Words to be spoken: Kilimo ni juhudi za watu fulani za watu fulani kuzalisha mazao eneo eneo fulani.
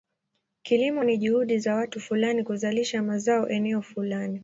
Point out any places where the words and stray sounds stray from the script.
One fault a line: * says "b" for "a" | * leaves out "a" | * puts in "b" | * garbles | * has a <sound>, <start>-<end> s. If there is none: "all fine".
* leaves out "za watu fulani"
* leaves out "eneo"